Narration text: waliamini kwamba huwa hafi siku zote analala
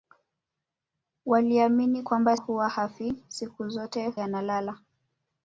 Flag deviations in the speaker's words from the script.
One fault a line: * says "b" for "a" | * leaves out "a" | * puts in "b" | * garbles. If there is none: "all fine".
all fine